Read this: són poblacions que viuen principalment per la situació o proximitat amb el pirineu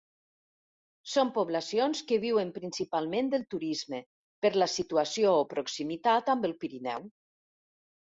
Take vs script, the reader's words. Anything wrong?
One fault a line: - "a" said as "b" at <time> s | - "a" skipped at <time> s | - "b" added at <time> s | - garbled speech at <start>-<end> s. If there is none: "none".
- "del turisme" added at 3.4 s